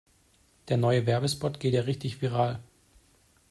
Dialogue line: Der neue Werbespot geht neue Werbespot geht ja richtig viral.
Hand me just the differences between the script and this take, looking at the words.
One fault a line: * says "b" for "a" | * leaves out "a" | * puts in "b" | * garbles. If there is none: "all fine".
* leaves out "neue Werbespot geht"